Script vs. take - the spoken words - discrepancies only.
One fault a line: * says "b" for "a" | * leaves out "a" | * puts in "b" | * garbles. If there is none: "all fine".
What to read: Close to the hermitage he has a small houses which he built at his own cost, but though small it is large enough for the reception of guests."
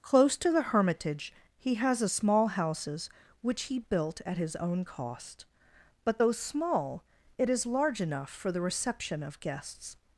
all fine